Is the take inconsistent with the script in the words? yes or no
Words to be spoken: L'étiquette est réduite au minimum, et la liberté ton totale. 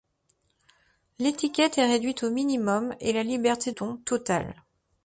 no